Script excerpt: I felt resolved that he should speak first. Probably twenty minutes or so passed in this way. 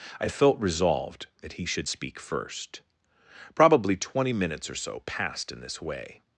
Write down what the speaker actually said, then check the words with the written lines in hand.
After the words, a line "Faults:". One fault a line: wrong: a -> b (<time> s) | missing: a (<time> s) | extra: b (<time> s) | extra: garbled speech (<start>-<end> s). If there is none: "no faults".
I felt resolved that he should speak first. Probably twenty minutes or so passed in this way.
Faults:
no faults